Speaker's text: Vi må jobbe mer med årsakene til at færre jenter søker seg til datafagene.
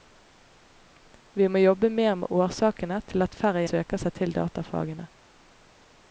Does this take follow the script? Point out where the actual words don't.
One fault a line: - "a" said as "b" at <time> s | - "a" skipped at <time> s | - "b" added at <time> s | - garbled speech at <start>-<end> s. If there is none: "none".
- "jenter" skipped at 3.6 s